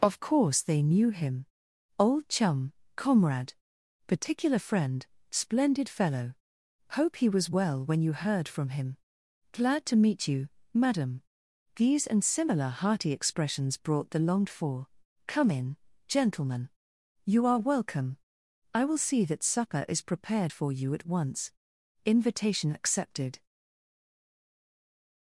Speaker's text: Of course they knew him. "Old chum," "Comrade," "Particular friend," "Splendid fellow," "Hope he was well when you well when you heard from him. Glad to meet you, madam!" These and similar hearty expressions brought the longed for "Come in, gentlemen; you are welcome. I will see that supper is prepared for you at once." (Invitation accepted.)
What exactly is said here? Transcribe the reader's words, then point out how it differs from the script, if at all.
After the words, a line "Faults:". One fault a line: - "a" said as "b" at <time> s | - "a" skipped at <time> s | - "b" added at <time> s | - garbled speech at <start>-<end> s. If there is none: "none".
Of course they knew him. "Old chum," "Comrade," "Particular friend," "Splendid fellow," "Hope he was well when you heard from him. Glad to meet you, madam!" These and similar hearty expressions brought the longed for "Come in, gentlemen; you are welcome. I will see that supper is prepared for you at once." (Invitation accepted.)
Faults:
- "well when you" skipped at 8.1 s